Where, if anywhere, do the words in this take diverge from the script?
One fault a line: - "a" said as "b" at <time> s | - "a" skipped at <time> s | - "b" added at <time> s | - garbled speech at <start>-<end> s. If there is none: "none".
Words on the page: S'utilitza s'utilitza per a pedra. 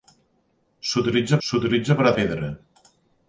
none